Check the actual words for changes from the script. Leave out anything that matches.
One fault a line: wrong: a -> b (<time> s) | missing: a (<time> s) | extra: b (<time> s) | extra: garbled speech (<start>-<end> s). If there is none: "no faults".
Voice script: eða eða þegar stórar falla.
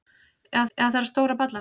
no faults